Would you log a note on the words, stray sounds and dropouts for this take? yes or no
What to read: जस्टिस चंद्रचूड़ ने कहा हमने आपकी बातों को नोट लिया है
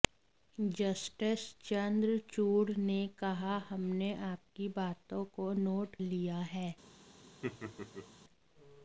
yes